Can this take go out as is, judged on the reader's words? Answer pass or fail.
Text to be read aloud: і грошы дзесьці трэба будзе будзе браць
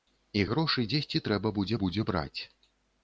pass